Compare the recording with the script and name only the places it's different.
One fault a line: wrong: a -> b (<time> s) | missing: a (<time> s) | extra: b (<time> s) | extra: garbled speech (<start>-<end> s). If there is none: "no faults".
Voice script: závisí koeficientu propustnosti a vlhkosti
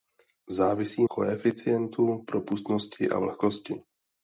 no faults